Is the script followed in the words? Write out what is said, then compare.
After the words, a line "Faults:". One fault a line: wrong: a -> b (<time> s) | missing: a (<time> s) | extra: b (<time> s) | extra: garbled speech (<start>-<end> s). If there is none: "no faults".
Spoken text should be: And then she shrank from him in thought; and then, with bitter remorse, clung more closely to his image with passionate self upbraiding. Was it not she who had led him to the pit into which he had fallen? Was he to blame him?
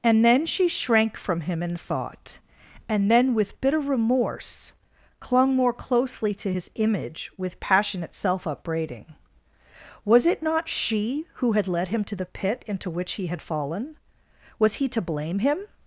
And then she shrank from him in thought; and then, with bitter remorse, clung more closely to his image with passionate self upbraiding. Was it not she who had led him to the pit into which he had fallen? Was he to blame him?
Faults:
no faults